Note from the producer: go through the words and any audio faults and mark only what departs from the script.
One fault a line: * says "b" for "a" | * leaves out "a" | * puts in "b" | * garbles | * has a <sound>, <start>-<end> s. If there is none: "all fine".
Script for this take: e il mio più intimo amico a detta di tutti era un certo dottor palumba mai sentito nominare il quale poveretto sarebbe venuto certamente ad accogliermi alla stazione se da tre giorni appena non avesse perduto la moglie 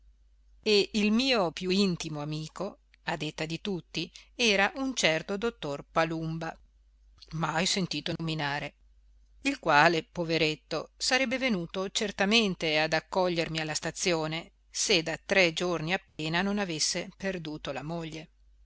* has a dropout, 8.2-8.2 s
* has a dropout, 16.1-16.2 s